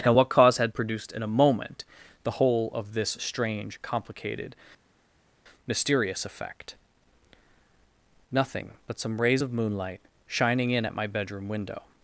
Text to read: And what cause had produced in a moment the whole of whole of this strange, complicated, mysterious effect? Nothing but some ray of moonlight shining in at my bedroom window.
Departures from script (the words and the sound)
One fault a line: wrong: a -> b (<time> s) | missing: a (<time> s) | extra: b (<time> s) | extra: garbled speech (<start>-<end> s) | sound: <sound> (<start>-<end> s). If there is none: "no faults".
missing: whole of (2.9 s)
wrong: ray -> rays (9.2 s)